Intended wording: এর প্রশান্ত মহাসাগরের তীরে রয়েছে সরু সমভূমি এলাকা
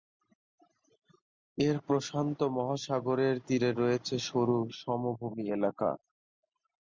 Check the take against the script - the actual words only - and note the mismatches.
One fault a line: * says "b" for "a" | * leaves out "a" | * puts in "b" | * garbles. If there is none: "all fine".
all fine